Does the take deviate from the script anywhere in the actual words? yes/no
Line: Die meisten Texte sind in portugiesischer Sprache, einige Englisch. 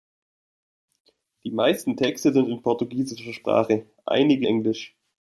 no